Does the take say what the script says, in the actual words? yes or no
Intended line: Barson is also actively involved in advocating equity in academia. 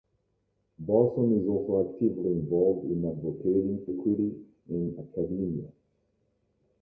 yes